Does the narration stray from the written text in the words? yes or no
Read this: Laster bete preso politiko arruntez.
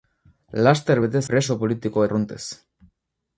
no